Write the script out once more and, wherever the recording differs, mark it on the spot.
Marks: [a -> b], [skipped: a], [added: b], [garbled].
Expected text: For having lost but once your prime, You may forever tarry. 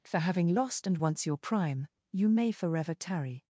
For having lost [but -> and] once your prime, You may forever tarry.